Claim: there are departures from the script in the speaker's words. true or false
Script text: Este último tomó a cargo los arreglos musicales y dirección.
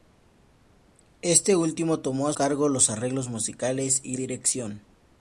false